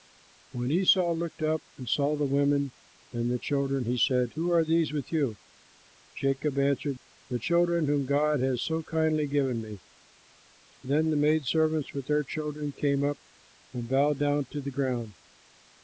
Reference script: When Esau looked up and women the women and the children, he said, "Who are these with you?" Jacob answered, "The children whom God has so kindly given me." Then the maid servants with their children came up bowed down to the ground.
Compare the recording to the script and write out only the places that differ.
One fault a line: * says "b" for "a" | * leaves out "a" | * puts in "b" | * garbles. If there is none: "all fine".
* says "saw" for "women"
* puts in "and"